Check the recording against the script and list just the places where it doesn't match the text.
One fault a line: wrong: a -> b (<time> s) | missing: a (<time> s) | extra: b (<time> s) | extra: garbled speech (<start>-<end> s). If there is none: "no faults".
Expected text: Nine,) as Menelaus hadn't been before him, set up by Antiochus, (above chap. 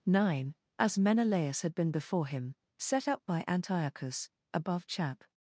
wrong: hadn't -> had (1.6 s)